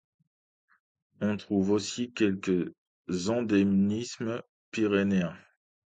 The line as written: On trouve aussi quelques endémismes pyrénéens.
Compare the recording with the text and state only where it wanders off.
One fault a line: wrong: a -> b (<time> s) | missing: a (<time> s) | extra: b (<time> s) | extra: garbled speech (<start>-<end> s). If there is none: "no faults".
no faults